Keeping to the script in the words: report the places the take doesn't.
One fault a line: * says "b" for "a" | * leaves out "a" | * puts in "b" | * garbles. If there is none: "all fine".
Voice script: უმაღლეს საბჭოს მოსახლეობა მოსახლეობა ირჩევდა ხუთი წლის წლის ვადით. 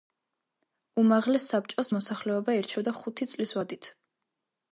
* leaves out "მოსახლეობა"
* leaves out "წლის"